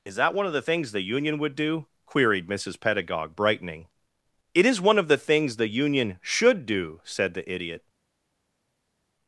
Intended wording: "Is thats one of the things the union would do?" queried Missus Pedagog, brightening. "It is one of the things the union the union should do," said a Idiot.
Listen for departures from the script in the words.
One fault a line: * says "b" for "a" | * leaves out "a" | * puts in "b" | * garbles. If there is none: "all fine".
* says "that" for "thats"
* leaves out "the union"
* says "the" for "a"